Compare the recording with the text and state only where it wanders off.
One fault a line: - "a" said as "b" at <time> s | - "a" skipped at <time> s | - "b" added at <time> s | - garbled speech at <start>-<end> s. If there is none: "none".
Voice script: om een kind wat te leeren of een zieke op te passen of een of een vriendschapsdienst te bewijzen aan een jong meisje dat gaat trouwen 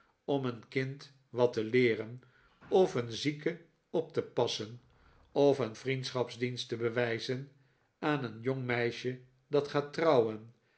- "of een" skipped at 5.8 s